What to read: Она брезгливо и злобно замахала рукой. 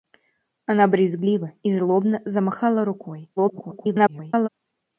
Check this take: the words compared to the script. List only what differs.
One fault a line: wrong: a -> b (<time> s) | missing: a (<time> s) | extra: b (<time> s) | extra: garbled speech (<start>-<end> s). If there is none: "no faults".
extra: garbled speech (3.4-4.5 s)